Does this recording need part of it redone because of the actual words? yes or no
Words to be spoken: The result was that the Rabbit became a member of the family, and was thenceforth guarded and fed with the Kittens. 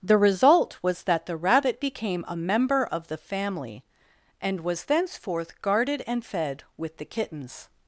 no